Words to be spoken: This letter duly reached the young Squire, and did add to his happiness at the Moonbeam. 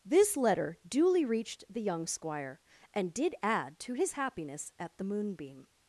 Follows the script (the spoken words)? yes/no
yes